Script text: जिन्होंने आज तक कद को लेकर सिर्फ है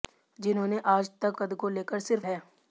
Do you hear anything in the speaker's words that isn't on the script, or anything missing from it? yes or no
no